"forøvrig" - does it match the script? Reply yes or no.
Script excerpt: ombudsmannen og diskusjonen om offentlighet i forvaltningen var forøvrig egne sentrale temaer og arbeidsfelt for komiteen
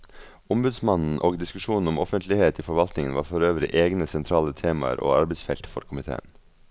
yes